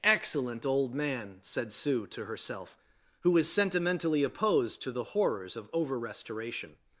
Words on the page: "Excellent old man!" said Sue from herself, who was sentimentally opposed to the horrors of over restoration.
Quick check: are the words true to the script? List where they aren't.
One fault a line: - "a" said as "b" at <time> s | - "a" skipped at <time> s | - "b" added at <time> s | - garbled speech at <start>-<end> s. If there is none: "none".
- "from" said as "to" at 2.1 s